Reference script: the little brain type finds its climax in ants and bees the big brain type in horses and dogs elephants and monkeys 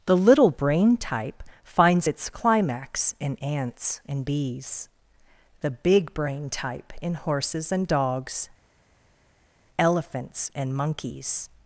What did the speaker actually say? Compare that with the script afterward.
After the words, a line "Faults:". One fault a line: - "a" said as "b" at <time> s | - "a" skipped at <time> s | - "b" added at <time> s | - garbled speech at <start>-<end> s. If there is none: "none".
the little brain type finds its climax in ants and bees the big brain type in horses and dogs elephants and monkeys
Faults:
none